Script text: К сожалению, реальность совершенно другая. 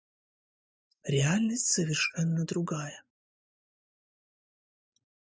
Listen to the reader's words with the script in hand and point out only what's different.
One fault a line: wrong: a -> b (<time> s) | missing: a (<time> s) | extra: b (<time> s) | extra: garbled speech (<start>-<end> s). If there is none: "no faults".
missing: сожалению (1.1 s)